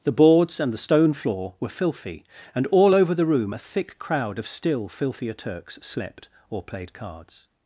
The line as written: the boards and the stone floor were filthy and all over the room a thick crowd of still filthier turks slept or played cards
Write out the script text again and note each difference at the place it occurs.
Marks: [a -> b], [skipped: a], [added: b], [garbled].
the boards and the stone floor were filthy and all over the room a thick crowd of still filthier turks slept or played cards